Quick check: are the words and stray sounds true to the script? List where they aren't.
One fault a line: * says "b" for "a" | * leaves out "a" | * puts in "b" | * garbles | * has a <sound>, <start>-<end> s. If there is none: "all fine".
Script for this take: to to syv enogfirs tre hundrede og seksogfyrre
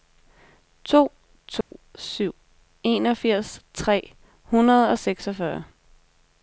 * has a dropout, 1.6-1.7 s